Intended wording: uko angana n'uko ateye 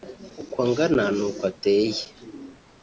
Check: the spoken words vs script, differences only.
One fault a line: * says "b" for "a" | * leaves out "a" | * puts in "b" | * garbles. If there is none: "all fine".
all fine